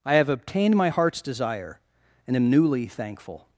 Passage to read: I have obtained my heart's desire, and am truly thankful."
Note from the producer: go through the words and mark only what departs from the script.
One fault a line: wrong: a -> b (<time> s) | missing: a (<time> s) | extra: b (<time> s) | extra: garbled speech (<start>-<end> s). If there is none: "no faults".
wrong: truly -> newly (2.5 s)